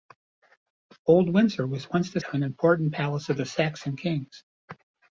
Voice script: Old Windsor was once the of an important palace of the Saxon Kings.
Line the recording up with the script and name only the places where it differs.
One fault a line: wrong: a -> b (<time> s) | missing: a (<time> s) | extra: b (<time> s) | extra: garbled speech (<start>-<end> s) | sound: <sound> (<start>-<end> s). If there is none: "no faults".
no faults